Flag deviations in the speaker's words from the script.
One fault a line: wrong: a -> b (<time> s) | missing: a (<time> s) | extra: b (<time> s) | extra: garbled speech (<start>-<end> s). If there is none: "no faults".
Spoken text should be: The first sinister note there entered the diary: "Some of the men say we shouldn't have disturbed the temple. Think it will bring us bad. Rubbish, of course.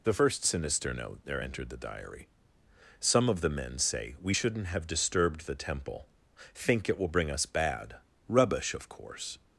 no faults